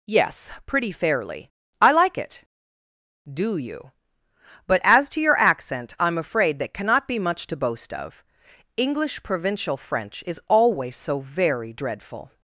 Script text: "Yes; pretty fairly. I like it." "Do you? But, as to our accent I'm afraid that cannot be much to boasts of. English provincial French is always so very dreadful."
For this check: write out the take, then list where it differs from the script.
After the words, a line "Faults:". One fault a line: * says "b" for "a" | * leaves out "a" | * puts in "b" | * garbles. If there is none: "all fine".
"Yes; pretty fairly. I like it." "Do you? But, as to your accent I'm afraid that cannot be much to boast of. English provincial French is always so very dreadful."
Faults:
* says "your" for "our"
* says "boast" for "boasts"